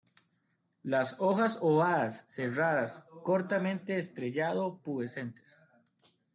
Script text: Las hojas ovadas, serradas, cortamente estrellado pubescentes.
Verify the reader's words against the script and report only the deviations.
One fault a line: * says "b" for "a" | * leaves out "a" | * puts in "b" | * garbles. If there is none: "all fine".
all fine